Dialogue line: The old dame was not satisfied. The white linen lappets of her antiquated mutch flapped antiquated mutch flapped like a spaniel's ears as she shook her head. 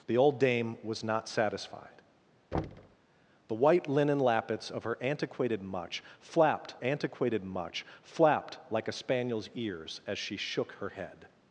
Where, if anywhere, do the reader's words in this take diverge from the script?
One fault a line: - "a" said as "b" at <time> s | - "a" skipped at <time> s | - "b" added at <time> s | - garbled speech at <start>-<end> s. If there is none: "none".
none